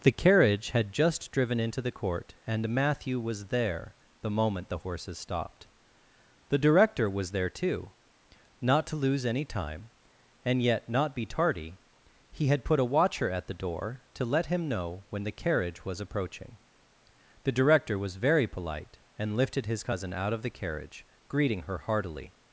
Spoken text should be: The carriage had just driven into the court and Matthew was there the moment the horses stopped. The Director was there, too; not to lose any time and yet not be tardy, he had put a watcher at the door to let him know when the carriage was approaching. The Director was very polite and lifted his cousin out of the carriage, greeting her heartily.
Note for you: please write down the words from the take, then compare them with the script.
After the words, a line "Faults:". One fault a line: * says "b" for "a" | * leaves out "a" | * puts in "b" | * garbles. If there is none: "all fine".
The carriage had just driven into the court and Matthew was there the moment the horses stopped. The Director was there, too; not to lose any time and yet not be tardy, he had put a watcher at the door to let him know when the carriage was approaching. The Director was very polite and lifted his cousin out of the carriage, greeting her heartily.
Faults:
all fine